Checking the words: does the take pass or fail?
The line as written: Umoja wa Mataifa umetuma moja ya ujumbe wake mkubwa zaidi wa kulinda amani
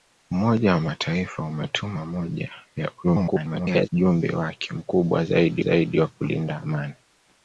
fail